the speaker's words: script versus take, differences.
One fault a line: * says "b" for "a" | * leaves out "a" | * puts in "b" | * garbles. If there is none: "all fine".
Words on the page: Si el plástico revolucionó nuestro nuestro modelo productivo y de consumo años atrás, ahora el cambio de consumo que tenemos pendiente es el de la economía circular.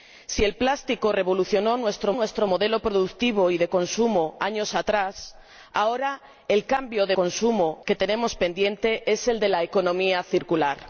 all fine